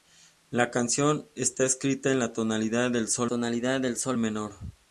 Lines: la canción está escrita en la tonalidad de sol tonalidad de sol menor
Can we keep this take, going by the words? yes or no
yes